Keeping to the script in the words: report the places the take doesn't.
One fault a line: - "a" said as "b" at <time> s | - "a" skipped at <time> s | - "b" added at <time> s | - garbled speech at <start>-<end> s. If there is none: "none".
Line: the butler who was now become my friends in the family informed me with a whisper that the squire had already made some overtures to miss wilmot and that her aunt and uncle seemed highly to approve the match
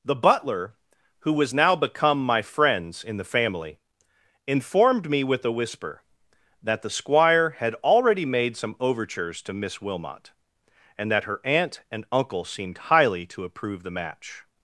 none